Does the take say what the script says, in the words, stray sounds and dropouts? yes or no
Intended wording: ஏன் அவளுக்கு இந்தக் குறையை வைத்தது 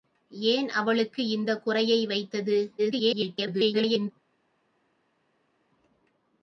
no